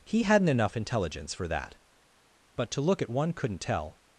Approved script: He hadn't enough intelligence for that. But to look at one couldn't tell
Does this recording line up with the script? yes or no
yes